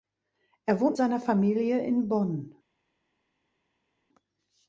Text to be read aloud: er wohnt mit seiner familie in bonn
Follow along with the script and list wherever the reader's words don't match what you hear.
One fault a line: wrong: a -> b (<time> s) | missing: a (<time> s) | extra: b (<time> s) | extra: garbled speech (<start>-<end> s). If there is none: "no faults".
missing: mit (1.0 s)